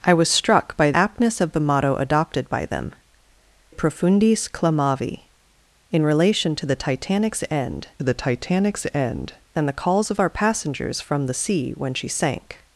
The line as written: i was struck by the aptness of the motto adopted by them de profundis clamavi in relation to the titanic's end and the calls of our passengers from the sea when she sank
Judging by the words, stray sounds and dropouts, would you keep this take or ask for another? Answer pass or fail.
fail